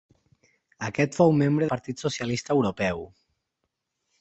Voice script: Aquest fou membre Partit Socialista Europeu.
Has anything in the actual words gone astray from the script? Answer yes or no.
no